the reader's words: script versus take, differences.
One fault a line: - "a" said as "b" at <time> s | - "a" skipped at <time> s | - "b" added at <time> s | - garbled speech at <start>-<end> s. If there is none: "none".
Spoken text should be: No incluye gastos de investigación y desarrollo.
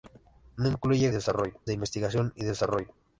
- "gastos" said as "desarrollo" at 1.1 s